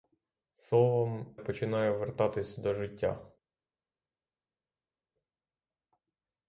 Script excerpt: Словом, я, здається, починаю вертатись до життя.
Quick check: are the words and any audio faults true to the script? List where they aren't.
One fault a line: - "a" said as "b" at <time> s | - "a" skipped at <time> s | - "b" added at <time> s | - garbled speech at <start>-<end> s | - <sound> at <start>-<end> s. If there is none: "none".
- "я здається" skipped at 1.4 s